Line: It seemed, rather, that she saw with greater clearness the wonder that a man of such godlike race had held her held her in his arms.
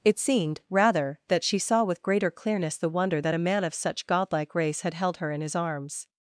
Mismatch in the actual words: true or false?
true